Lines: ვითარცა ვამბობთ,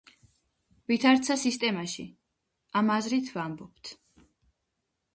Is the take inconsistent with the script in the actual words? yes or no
yes